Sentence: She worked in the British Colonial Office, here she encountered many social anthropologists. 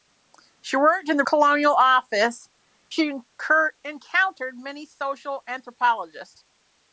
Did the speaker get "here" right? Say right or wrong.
wrong